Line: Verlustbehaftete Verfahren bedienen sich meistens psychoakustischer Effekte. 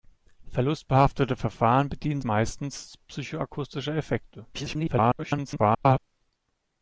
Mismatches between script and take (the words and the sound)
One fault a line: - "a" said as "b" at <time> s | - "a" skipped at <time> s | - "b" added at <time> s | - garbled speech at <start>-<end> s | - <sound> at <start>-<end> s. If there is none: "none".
- "sich" skipped at 2.2 s
- garbled speech at 4.5-6.0 s